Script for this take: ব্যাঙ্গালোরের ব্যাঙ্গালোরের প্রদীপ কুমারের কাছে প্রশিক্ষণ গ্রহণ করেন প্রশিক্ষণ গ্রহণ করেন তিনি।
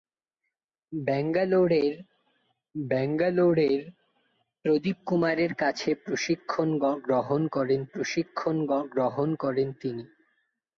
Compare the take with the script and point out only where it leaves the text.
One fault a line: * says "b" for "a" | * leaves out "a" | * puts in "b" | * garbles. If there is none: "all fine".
all fine